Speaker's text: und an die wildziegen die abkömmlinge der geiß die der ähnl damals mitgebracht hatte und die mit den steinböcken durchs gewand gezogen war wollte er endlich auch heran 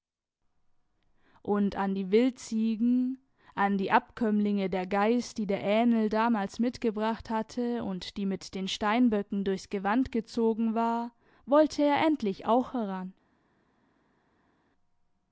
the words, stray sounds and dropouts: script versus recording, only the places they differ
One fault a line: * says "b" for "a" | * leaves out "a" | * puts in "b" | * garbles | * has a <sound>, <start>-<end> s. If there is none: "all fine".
* puts in "an"